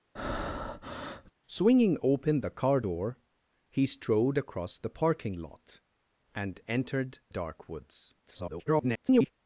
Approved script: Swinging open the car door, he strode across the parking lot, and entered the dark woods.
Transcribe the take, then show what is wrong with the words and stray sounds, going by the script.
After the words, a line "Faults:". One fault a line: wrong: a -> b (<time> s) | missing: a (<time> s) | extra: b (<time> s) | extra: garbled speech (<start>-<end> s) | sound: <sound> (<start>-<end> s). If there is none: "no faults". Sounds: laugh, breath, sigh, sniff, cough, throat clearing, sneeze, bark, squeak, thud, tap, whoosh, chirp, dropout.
Swinging open the car door, he strode across the parking lot, and entered dark woods. [garbled]
Faults:
sound: breath (0.2-1.3 s)
missing: the (7.2 s)
extra: garbled speech (8.2-9.3 s)